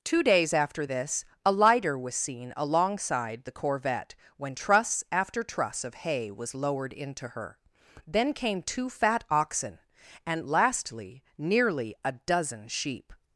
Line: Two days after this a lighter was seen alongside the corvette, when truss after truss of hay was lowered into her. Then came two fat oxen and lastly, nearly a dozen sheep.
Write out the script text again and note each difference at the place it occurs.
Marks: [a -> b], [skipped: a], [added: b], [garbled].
Two days after this a lighter was seen alongside the corvette, when truss after truss of hay was lowered into her. Then came two fat oxen and lastly, nearly a dozen sheep.